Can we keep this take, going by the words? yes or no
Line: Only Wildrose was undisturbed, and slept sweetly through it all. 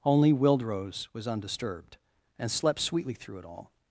yes